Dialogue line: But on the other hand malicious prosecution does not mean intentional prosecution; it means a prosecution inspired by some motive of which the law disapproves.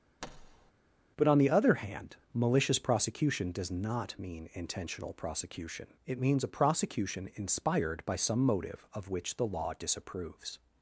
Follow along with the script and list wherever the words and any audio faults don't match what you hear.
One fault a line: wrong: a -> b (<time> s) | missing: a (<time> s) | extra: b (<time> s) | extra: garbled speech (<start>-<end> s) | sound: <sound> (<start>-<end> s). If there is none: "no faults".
sound: thud (0.2-0.7 s)